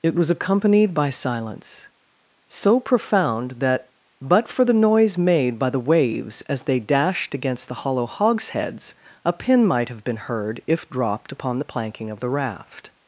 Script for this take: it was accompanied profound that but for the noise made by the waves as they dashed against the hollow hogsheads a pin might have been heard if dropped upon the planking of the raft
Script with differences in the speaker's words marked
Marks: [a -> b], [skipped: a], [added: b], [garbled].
it was accompanied [added: by silence so] profound that but for the noise made by the waves as they dashed against the hollow hogsheads a pin might have been heard if dropped upon the planking of the raft